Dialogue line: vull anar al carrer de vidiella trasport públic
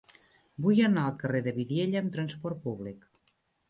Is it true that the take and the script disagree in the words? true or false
true